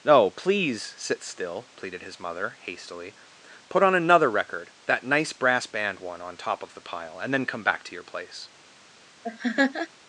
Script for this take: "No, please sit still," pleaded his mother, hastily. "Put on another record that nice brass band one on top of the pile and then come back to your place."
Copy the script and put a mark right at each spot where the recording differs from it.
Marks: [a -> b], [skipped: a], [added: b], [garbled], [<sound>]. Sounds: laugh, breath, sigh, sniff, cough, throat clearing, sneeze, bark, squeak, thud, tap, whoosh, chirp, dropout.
"No, please sit still," pleaded his mother, hastily. "Put on another record that nice brass band one on top of the pile and then come back to your place." [laugh]